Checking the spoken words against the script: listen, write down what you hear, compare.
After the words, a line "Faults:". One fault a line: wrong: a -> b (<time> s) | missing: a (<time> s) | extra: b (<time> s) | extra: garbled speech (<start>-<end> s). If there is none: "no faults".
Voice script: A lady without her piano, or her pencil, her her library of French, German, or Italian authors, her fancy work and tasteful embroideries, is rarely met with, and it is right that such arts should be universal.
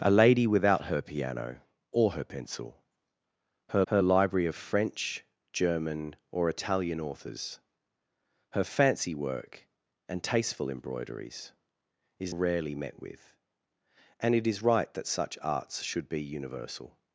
A lady without her piano, or her pencil, her her library of French, German, or Italian authors, her fancy work and tasteful embroideries, is rarely met with, and it is right that such arts should be universal.
Faults:
no faults